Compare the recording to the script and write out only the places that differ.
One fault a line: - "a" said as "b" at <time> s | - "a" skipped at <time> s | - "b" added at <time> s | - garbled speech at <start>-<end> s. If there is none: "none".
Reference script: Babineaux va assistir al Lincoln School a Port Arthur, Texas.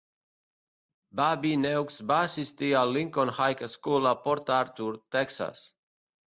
- "High" added at 3.4 s